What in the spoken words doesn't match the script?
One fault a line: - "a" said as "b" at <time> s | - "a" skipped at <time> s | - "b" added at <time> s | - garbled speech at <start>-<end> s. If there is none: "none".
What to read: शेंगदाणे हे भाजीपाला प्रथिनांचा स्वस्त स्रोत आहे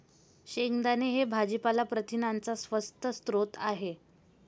none